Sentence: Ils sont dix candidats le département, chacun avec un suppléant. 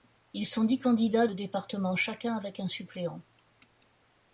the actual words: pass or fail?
pass